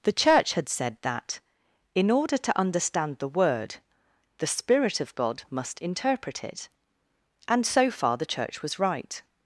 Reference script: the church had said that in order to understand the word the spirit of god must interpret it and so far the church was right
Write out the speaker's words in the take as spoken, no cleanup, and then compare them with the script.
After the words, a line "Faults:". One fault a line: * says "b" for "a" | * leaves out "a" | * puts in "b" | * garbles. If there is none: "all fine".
the church had said that in order to understand the word the spirit of god must interpret it and so far the church was right
Faults:
all fine